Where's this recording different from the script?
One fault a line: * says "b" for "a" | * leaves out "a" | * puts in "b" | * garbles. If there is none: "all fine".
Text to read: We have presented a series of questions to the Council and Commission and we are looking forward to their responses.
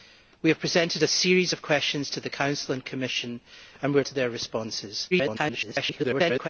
* leaves out "looking forward"
* garbles